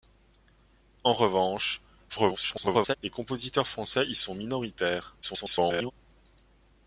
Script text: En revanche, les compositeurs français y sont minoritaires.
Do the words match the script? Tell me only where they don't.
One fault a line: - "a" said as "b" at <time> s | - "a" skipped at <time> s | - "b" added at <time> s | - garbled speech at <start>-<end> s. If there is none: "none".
- garbled speech at 2.1-2.9 s
- garbled speech at 5.2-5.9 s